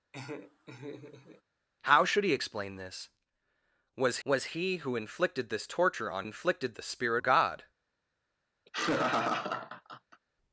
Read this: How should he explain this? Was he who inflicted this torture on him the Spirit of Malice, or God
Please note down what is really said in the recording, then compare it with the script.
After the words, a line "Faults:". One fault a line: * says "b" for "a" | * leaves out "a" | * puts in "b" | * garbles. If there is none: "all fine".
How should he explain this? Was was he who inflicted this torture on inflicted the Spirit God
Faults:
* puts in "was"
* says "inflicted" for "him"
* leaves out "of Malice or"